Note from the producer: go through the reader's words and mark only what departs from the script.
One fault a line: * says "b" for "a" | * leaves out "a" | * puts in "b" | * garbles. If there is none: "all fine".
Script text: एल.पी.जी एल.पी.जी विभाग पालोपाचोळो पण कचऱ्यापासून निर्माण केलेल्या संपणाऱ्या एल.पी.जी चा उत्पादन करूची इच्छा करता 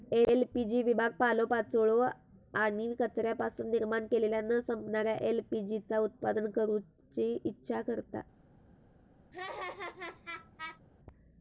* leaves out "एल.पी.जी"
* says "आणि" for "पण"
* puts in "न"